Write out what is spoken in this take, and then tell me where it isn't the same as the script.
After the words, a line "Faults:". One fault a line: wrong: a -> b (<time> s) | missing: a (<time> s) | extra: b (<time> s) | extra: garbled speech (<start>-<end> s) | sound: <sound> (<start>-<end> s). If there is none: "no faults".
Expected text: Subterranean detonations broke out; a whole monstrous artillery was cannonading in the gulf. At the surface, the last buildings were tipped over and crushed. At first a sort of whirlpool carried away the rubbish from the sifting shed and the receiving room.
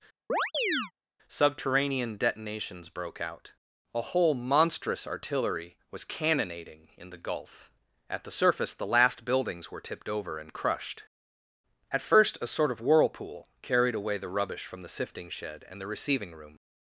Subterranean detonations broke out; a whole monstrous artillery was cannonading in the gulf. At the surface, the last buildings were tipped over and crushed. At first a sort of whirlpool carried away the rubbish from the sifting shed and the receiving room.
Faults:
sound: chirp (0.3-0.9 s)